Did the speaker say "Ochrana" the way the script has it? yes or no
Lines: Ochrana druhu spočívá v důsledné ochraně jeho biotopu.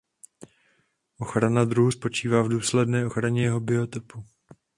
yes